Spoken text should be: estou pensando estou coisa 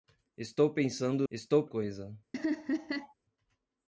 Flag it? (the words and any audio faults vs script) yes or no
yes